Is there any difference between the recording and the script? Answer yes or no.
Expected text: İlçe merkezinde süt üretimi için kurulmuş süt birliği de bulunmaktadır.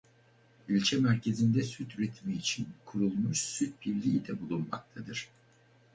no